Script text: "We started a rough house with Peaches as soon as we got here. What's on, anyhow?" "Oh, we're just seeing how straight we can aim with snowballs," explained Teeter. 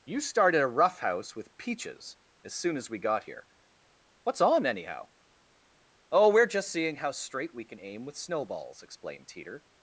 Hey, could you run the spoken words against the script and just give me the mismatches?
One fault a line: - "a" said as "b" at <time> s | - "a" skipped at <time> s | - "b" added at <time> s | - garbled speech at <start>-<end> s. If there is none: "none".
- "We" said as "You" at 0.0 s